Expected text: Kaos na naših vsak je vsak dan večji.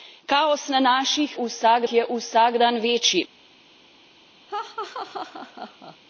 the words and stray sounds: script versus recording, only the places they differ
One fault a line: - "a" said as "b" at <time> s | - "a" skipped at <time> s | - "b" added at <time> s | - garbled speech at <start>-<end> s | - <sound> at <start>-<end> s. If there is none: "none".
- laugh at 4.5-6.0 s